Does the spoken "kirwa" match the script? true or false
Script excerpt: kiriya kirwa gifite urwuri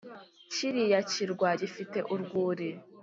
true